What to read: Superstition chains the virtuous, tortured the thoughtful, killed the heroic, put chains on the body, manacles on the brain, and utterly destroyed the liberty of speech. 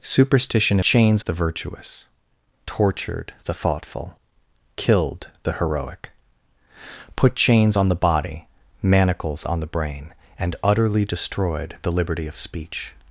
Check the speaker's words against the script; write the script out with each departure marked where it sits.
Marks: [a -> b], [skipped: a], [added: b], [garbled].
Superstition chains the virtuous, tortured the thoughtful, killed the heroic, put chains on the body, manacles on the brain, and utterly destroyed the liberty of speech.